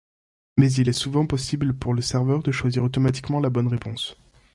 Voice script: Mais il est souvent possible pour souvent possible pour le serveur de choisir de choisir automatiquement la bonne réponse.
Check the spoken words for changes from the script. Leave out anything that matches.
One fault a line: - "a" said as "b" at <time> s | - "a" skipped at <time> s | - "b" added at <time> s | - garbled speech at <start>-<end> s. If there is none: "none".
- "souvent possible pour" skipped at 1.9 s
- "de choisir" skipped at 2.8 s